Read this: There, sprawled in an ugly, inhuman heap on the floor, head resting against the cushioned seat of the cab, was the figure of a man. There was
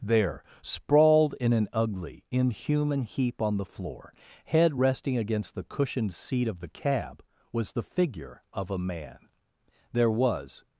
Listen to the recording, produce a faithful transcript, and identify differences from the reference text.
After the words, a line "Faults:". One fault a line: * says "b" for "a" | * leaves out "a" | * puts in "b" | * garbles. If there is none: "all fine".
There, sprawled in an ugly, inhuman heap on the floor, head resting against the cushioned seat of the cab, was the figure of a man. There was
Faults:
all fine